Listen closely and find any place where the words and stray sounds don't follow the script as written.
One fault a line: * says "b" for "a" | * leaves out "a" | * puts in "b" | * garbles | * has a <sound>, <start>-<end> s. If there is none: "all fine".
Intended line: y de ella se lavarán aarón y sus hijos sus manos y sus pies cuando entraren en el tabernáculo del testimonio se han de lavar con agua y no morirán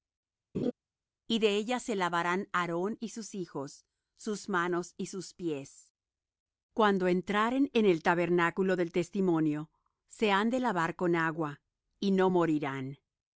* has a laugh, 0.5-0.7 s